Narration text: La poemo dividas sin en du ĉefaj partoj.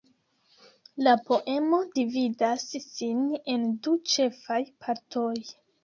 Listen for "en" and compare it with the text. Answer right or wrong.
right